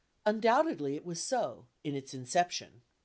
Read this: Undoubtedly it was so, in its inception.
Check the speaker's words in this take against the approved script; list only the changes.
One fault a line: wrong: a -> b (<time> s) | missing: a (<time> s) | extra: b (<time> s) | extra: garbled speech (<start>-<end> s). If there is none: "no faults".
no faults